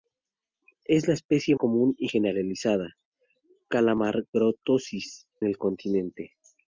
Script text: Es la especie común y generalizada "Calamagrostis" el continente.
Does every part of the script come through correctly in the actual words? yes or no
yes